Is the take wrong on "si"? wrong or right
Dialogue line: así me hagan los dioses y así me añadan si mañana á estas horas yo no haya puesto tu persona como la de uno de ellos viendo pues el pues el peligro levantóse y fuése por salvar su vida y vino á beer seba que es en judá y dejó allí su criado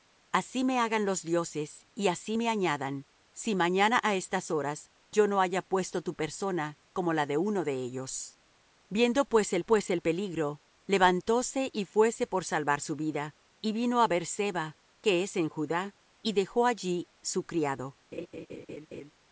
right